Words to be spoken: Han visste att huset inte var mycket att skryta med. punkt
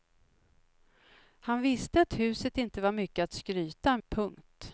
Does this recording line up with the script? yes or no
no